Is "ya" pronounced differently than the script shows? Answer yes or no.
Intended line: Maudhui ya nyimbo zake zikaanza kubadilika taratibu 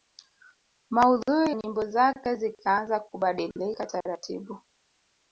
yes